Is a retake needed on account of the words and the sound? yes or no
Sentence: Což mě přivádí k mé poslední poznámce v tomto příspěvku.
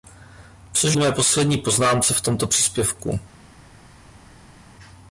yes